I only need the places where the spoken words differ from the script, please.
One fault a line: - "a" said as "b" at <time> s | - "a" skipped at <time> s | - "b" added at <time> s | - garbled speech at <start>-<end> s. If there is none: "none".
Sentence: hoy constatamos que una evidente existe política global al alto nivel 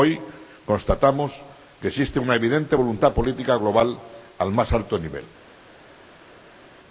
- "existe" added at 1.9 s
- "existe" said as "voluntad" at 2.8 s
- "más" added at 4.5 s